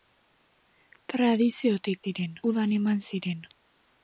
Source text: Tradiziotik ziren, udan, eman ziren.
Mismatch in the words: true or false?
false